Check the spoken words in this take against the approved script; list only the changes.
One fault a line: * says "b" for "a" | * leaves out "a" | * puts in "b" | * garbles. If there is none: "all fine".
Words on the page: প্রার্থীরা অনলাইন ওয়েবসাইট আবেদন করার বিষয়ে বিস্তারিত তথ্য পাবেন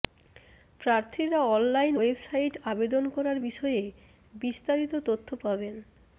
all fine